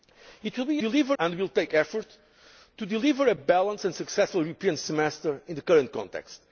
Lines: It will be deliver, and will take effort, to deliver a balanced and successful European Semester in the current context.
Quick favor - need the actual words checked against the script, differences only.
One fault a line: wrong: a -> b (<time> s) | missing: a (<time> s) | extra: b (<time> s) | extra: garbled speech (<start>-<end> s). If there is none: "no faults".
no faults